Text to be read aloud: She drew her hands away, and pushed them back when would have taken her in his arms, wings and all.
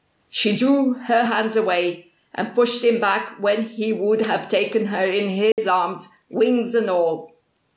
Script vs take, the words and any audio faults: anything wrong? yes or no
yes